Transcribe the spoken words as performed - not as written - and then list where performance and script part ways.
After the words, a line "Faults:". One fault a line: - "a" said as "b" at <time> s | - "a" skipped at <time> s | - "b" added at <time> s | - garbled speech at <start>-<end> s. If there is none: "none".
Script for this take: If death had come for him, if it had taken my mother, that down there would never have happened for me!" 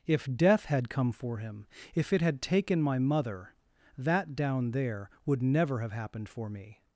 If death had come for him, if it had taken my mother, that down there would never have happened for me!"
Faults:
none